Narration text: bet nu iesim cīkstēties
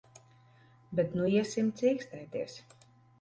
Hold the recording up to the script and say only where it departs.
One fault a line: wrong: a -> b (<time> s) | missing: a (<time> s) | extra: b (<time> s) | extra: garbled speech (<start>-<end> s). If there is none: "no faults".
no faults